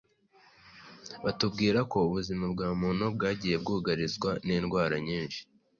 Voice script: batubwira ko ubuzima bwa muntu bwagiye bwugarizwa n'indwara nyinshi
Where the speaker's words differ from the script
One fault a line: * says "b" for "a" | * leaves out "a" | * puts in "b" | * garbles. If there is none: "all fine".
all fine